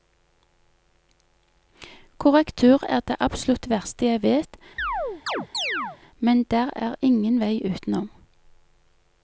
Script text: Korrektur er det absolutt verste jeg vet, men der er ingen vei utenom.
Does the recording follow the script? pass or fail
pass